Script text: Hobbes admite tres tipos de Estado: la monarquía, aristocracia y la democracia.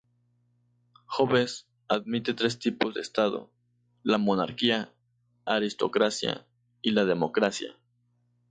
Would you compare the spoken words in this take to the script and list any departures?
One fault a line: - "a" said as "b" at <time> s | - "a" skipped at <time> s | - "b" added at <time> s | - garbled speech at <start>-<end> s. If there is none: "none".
none